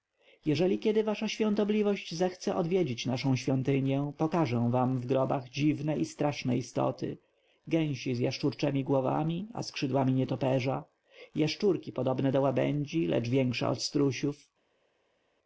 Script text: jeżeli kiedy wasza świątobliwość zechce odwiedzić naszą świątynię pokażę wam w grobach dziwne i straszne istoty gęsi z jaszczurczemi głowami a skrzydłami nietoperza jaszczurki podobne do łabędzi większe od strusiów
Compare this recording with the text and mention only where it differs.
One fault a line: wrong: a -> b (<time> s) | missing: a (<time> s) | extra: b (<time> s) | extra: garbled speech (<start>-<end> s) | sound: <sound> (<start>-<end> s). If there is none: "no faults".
extra: lecz (13.1 s)